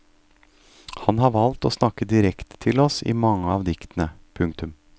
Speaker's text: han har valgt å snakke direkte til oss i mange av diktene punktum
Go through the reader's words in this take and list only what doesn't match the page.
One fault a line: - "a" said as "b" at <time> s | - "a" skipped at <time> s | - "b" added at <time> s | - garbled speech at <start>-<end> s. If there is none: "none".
none